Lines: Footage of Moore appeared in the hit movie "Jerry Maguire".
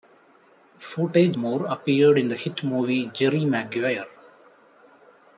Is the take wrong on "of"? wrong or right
wrong